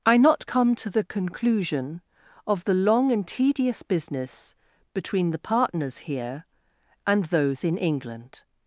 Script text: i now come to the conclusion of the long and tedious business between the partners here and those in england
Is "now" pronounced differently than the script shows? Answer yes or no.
yes